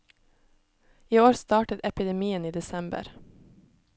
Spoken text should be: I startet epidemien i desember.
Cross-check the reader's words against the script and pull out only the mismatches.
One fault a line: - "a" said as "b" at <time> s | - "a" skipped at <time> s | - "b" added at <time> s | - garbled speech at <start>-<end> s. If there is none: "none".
- "år" added at 1.2 s